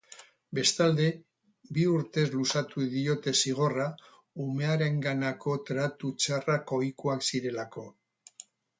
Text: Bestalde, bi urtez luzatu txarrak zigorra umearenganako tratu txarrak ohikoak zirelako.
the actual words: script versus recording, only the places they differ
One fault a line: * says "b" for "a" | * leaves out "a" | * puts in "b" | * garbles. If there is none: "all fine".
* says "diote" for "txarrak"